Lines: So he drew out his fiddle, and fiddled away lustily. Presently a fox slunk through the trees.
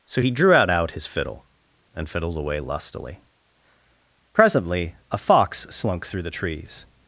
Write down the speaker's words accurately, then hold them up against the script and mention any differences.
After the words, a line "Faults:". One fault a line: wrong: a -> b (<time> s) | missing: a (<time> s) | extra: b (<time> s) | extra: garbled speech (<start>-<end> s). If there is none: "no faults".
So he drew out out his fiddle, and fiddled away lustily. Presently a fox slunk through the trees.
Faults:
extra: out (0.7 s)